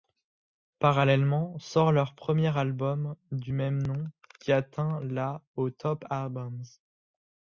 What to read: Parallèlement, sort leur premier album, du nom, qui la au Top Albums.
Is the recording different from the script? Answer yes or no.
yes